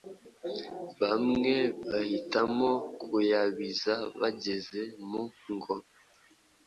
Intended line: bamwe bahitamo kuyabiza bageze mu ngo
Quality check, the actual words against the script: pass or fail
pass